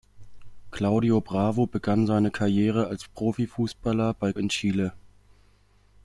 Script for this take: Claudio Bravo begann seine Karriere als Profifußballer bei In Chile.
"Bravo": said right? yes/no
yes